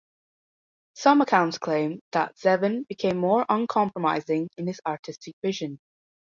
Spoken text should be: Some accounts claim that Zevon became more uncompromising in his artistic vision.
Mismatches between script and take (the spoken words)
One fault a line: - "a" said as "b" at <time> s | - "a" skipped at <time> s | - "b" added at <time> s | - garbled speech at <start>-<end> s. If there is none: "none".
none